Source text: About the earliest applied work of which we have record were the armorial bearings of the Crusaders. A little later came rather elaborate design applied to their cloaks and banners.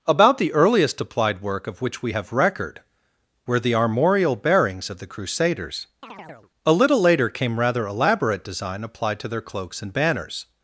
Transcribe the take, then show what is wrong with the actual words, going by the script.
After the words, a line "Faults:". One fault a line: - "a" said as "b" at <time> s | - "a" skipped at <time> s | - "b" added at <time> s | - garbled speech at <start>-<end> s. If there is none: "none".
About the earliest applied work of which we have record were the armorial bearings of the Crusaders. A little later came rather elaborate design applied to their cloaks and banners.
Faults:
none